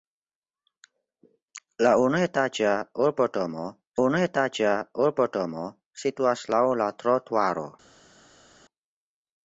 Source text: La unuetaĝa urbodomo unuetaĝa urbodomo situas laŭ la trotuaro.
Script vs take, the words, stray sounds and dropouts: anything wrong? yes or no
no